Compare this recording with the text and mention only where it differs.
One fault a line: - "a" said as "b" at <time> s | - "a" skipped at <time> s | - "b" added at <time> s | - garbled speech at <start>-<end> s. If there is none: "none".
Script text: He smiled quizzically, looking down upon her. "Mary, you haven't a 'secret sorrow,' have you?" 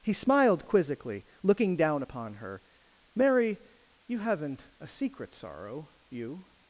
- "have" skipped at 5.9 s